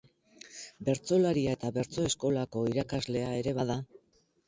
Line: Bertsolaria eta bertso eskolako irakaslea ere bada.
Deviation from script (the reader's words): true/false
false